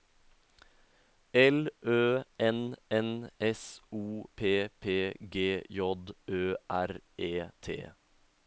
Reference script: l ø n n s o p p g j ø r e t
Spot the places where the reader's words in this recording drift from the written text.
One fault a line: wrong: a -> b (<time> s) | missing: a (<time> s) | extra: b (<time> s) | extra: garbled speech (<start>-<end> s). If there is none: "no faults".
no faults